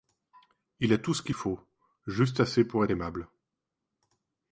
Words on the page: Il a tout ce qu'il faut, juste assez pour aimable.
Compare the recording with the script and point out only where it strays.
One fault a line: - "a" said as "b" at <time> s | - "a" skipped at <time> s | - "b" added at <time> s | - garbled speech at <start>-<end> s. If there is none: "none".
none